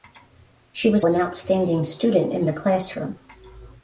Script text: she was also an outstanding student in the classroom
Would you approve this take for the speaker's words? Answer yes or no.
no